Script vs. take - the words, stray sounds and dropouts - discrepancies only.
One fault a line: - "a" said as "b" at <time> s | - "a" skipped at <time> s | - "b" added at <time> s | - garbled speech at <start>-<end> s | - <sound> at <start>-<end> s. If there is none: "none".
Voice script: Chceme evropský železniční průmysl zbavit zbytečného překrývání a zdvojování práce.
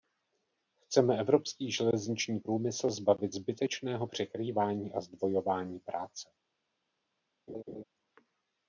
- laugh at 7.5-7.8 s